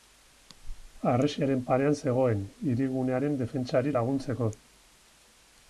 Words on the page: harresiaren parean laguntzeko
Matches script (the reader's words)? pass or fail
fail